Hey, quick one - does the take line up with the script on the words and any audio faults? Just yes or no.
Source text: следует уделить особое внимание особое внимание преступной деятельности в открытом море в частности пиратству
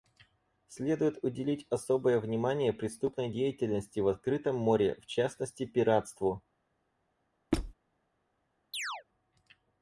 no